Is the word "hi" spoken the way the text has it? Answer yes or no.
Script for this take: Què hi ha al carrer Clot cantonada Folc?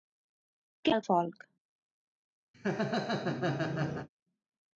no